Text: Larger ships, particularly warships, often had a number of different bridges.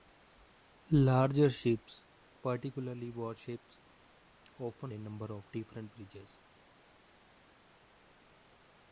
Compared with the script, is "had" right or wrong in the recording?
wrong